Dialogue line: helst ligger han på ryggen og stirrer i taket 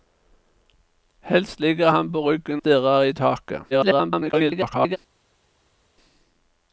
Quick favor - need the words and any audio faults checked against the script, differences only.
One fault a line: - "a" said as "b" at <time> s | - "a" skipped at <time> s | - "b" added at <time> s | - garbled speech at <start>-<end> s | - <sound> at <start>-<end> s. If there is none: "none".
- "og" skipped at 2.6 s
- garbled speech at 3.7-5.0 s